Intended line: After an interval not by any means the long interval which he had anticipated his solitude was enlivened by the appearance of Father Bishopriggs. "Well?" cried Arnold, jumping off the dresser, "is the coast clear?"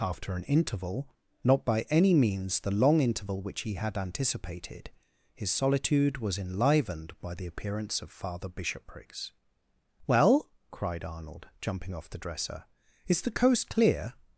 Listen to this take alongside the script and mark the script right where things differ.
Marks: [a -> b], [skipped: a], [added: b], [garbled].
After an interval not by any means the long interval which he had anticipated his solitude was enlivened by the appearance of Father Bishopriggs. "Well?" cried Arnold, jumping off the dresser, "is the coast clear?"